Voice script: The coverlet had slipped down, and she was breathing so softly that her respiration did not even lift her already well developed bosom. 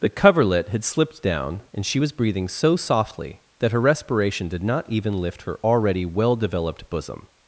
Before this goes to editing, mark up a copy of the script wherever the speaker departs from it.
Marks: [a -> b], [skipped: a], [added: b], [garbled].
The coverlet had slipped down, and she was breathing so softly that her respiration did not even lift her already well developed bosom.